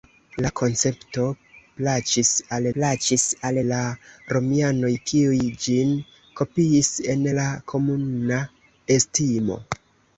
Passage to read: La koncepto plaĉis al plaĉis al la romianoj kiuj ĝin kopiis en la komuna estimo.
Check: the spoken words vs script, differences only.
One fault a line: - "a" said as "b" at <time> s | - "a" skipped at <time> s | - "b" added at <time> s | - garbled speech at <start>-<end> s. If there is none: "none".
none